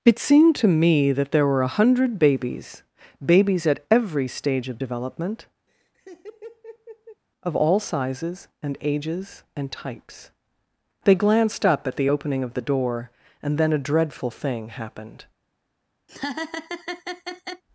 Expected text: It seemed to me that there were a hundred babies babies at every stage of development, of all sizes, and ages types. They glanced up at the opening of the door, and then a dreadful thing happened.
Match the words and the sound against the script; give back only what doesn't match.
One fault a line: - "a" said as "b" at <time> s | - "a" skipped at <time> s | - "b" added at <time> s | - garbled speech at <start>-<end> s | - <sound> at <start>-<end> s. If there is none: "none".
- laugh at 5.7-7.2 s
- "and" added at 9.6 s
- laugh at 16.1-17.6 s